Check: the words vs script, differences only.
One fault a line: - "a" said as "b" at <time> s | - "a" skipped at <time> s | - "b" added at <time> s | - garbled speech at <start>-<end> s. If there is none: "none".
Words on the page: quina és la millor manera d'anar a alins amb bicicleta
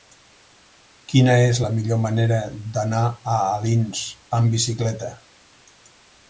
none